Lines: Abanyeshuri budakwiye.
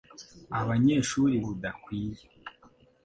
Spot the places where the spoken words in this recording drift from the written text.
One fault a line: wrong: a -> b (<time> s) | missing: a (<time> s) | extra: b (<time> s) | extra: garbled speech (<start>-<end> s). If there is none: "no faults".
no faults